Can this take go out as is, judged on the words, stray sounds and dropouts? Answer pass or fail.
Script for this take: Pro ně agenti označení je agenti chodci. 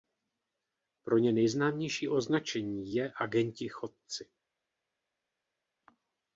fail